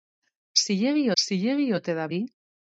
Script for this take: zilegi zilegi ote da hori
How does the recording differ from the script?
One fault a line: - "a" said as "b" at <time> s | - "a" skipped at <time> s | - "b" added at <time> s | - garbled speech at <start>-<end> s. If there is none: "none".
none